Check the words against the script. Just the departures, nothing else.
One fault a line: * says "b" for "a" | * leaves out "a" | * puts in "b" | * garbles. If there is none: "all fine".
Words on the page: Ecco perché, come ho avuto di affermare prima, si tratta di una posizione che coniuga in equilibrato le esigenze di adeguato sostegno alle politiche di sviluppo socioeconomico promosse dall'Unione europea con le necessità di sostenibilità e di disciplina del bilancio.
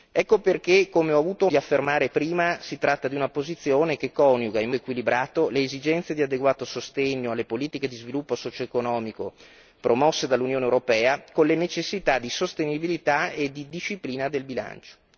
all fine